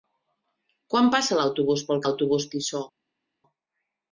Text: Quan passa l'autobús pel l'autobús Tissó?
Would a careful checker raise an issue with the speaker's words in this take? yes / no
no